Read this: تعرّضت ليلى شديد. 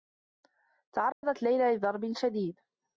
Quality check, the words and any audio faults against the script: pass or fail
fail